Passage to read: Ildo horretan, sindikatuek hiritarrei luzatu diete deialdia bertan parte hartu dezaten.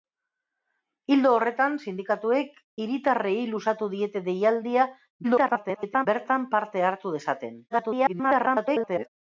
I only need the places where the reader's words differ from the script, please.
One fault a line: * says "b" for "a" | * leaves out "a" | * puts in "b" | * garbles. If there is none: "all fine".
* garbles
* garbles